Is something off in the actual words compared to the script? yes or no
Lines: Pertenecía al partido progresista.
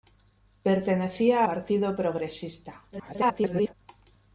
yes